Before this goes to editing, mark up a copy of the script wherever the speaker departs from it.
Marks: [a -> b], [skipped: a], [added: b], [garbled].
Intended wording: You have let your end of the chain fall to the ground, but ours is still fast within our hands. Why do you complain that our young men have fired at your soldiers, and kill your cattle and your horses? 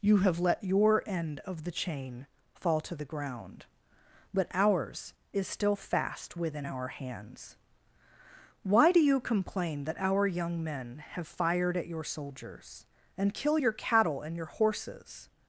You have let your end of the chain fall to the ground, but ours is still fast within our hands. Why do you complain that our young men have fired at your soldiers, and kill your cattle and your horses?